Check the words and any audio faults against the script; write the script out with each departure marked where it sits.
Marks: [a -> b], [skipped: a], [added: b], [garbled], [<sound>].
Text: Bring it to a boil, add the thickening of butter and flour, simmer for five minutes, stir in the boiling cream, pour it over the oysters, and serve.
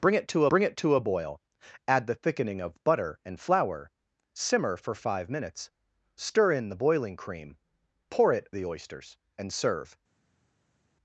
Bring it to [added: bring it to] a boil, add the thickening of butter and flour, simmer for five minutes, stir in the boiling cream, pour it [skipped: over] the oysters, and serve.